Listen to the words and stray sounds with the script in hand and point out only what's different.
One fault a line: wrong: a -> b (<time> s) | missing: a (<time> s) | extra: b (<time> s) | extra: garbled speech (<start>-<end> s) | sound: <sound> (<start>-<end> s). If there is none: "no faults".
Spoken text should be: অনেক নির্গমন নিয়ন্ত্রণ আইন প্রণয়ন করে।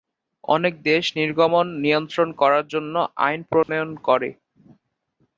extra: দেশ (0.9 s)
extra: করার জন্য (2.4 s)
sound: dropout (3.6-3.7 s)